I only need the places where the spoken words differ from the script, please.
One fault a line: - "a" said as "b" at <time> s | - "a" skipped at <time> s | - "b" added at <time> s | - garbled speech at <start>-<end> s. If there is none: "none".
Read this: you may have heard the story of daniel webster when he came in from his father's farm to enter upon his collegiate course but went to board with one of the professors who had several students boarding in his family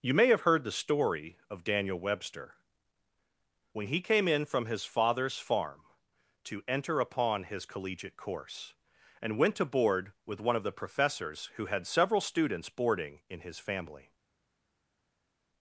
- "but" said as "and" at 9.2 s